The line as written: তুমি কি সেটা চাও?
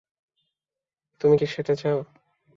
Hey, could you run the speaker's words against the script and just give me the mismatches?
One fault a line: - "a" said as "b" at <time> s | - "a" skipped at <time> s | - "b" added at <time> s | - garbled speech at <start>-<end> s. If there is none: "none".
none